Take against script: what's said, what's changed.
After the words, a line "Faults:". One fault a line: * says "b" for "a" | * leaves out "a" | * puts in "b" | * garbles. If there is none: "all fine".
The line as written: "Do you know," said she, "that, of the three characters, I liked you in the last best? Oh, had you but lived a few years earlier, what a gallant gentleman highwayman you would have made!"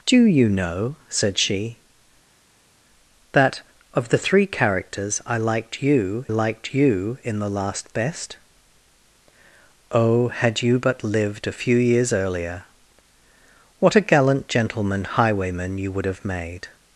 "Do you know," said she, "that, of the three characters, I liked you liked you in the last best? Oh, had you but lived a few years earlier, what a gallant gentleman highwayman you would have made!"
Faults:
* puts in "liked you"